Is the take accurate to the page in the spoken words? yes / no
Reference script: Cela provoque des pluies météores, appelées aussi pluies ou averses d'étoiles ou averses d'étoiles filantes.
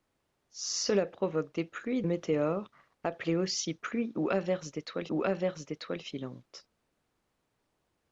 yes